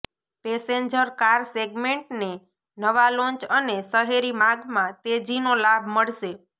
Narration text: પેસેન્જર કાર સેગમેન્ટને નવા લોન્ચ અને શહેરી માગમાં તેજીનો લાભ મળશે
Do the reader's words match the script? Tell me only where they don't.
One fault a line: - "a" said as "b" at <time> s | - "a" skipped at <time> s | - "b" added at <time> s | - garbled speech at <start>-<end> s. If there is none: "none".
none